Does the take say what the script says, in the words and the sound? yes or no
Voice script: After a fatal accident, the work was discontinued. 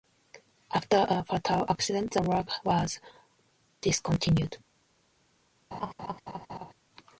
no